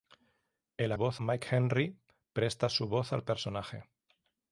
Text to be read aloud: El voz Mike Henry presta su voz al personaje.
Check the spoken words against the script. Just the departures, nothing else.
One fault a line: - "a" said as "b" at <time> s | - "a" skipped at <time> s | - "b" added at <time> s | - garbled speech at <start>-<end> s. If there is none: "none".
none